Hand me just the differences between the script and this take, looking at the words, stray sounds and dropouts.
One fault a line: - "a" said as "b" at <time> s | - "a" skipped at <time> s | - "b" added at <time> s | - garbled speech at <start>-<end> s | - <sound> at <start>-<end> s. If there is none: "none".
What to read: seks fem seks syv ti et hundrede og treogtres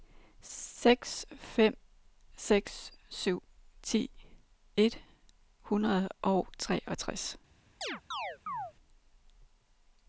- chirp at 7.8-8.7 s